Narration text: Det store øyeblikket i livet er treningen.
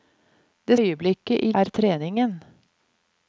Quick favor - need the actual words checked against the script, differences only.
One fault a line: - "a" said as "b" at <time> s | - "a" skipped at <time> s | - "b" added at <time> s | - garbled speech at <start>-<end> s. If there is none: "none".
- "store" skipped at 0.8 s
- "livet" skipped at 1.5 s